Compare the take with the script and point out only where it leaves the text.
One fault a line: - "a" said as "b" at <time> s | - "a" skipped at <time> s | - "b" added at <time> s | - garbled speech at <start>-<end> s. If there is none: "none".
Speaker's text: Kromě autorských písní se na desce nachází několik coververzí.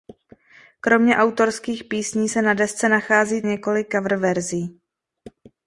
none